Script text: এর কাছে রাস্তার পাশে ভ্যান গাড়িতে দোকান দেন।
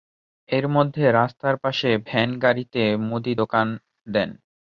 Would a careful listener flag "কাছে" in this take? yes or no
yes